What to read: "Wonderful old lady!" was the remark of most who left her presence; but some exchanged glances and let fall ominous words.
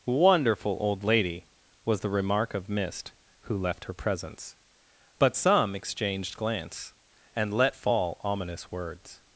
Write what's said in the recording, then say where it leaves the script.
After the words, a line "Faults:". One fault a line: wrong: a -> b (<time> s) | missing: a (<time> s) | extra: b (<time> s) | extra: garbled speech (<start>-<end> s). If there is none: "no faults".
"Wonderful old lady!" was the remark of mist who left her presence; but some exchanged glance and let fall ominous words.
Faults:
wrong: most -> mist (2.7 s)
wrong: glances -> glance (6.4 s)